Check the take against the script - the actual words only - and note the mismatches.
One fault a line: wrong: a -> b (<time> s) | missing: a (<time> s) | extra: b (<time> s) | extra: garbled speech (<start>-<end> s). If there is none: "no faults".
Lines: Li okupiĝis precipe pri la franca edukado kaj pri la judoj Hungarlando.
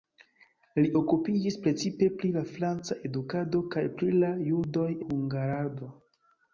no faults